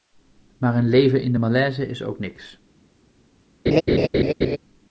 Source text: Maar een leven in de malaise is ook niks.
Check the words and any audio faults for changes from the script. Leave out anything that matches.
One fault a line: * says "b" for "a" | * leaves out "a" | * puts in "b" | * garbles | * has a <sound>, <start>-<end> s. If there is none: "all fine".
* has a laugh, 3.7-4.6 s